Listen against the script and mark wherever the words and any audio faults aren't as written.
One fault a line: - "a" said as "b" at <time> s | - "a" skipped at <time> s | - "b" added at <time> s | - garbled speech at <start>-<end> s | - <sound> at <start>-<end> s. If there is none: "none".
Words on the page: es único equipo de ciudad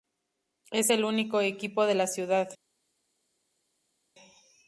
- "el" added at 0.9 s
- "la" added at 1.9 s